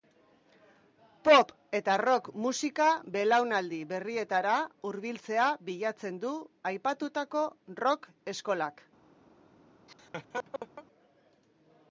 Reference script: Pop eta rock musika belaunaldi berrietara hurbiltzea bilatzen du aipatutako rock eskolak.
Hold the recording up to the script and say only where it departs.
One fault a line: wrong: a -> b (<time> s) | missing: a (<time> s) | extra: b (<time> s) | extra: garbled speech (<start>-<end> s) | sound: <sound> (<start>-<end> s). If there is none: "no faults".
sound: laugh (9.9-10.9 s)